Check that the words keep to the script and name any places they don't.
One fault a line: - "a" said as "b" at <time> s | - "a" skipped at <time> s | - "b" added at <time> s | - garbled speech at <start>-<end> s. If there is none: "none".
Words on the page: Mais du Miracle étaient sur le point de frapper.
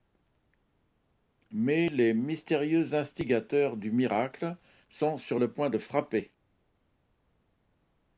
- "les mystérieux instigateurs" added at 1.9 s
- "étaient" said as "sont" at 4.9 s